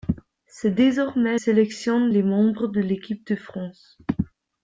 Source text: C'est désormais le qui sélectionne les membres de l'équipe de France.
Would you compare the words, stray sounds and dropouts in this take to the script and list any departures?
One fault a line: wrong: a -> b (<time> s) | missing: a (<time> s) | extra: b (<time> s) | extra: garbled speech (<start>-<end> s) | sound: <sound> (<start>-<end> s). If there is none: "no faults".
missing: le qui (1.4 s)